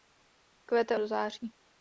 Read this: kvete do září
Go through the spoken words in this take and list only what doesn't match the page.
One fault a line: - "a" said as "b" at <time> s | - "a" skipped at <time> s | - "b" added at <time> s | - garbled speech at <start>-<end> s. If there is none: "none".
none